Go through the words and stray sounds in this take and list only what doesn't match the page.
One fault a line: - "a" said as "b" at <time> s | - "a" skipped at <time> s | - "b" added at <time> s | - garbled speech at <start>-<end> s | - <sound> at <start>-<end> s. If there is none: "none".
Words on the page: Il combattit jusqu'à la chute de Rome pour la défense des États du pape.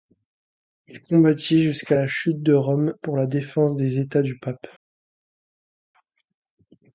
none